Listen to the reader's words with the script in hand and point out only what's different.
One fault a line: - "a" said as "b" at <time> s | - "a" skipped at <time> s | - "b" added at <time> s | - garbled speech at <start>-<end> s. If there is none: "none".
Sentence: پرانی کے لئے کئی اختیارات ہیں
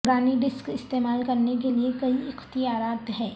- "ڈسک استعمال کرنے" added at 0.4 s